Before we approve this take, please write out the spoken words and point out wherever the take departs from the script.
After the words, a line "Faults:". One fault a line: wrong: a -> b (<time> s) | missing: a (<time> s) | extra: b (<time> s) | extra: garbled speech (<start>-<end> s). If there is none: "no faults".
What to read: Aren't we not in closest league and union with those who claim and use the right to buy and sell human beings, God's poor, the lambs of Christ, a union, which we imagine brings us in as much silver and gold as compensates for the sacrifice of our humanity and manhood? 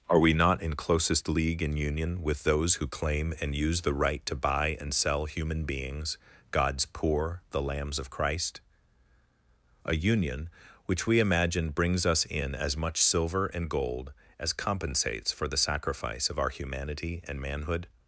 Are we not in closest league and union with those who claim and use the right to buy and sell human beings, God's poor, the lambs of Christ, a union, which we imagine brings us in as much silver and gold as compensates for the sacrifice of our humanity and manhood?
Faults:
wrong: Aren't -> Are (0.1 s)